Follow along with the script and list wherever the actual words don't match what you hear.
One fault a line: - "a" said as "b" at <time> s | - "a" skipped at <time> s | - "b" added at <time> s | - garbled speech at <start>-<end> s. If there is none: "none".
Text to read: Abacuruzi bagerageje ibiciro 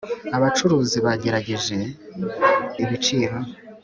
none